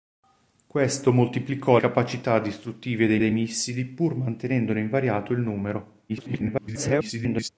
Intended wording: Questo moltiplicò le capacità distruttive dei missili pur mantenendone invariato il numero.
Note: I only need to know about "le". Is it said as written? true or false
false